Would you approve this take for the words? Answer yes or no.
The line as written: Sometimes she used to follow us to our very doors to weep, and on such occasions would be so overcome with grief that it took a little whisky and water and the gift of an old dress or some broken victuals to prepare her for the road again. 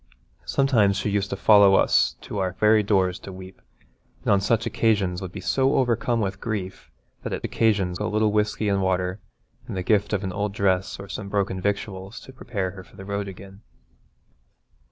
no